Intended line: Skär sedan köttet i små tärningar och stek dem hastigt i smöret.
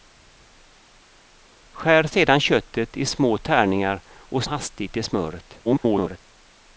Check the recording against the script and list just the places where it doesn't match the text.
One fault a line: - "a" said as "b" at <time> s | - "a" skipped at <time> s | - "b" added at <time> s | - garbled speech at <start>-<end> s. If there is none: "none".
- "stek dem" skipped at 4.4 s
- garbled speech at 5.6-6.2 s